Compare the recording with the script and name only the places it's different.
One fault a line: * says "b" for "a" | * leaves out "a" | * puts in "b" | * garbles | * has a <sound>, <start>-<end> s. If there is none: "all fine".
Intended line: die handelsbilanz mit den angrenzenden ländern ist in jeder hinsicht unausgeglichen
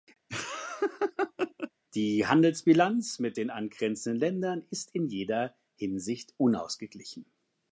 * has a laugh, 0.3-1.7 s